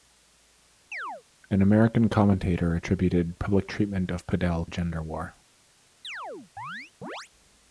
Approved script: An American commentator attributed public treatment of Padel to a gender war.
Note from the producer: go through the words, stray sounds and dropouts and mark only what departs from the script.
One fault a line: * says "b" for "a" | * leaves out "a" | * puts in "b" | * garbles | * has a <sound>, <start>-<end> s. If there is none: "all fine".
* has a chirp, 0.9-1.2 s
* leaves out "to"
* has a chirp, 6.0-7.3 s